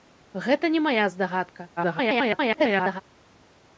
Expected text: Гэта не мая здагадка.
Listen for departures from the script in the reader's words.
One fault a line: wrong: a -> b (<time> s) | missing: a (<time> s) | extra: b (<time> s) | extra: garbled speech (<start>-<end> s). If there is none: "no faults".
extra: garbled speech (1.8-3.0 s)